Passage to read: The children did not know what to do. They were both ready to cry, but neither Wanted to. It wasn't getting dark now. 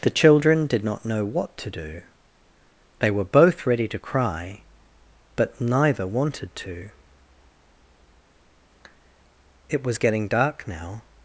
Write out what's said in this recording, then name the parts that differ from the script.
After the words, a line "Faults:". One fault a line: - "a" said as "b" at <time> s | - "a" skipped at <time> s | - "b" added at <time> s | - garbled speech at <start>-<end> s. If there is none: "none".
The children did not know what to do. They were both ready to cry, but neither Wanted to. It was getting dark now.
Faults:
- "wasn't" said as "was" at 9.8 s